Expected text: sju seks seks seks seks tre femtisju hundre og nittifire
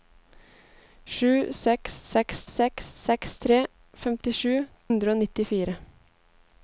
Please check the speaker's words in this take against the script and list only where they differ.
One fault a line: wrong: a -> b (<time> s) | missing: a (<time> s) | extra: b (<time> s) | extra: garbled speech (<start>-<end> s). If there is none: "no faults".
no faults